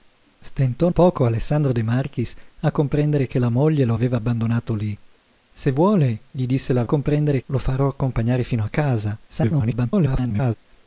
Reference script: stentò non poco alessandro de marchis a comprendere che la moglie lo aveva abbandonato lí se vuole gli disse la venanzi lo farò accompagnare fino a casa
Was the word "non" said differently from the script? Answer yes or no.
yes